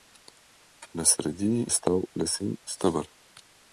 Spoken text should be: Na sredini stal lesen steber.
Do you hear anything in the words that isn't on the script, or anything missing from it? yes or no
no